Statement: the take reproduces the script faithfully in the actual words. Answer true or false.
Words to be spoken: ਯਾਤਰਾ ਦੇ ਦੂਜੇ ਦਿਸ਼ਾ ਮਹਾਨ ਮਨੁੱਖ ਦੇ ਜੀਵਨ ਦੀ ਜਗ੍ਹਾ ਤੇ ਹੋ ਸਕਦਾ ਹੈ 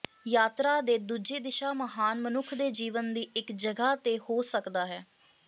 false